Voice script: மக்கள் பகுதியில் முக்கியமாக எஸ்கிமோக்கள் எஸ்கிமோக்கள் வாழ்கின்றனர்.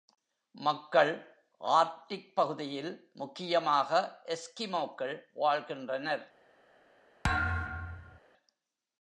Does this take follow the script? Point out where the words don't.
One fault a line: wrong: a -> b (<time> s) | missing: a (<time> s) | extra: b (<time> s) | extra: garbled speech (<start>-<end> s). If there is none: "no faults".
extra: ஆர்க்டிக் (1.6 s)
missing: எஸ்கிமோக்கள் (5.2 s)